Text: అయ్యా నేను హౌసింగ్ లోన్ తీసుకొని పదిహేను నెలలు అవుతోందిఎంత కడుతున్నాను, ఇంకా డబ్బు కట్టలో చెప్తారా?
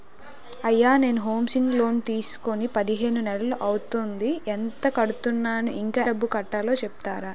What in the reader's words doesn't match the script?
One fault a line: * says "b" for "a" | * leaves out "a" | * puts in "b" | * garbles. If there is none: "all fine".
all fine